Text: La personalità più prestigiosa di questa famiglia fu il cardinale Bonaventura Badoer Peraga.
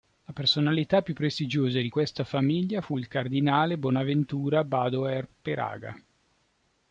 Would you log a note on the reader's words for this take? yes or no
no